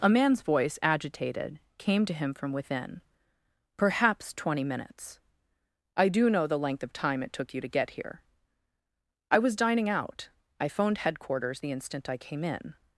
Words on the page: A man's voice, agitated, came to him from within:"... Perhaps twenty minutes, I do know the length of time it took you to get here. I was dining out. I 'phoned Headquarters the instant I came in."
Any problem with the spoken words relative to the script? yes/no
no